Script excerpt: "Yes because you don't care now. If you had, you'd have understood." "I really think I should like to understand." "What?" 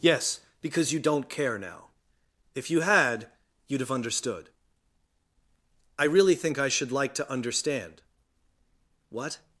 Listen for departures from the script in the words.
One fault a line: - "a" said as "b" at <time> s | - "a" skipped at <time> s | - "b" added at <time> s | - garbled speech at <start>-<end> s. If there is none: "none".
none